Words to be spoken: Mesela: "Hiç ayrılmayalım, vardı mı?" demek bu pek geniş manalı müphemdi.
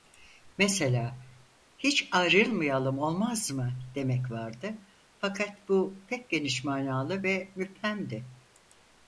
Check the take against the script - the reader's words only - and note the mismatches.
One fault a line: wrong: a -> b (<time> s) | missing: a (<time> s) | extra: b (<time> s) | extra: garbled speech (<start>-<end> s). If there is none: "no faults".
wrong: vardı -> olmaz (3.0 s)
extra: vardı fakat (4.3 s)
extra: ve (7.2 s)